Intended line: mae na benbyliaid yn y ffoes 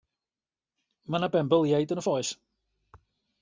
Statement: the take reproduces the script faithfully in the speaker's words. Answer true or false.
true